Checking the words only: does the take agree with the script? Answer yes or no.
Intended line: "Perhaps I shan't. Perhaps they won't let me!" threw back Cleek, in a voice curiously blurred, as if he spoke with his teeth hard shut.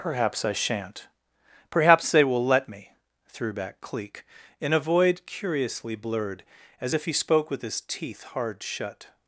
no